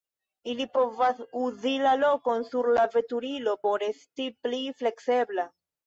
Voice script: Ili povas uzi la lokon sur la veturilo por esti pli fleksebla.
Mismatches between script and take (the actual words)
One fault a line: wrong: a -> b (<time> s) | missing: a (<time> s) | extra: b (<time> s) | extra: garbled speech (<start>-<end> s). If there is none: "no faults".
no faults